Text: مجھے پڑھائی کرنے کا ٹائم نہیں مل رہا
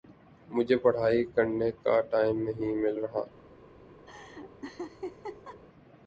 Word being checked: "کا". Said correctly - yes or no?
yes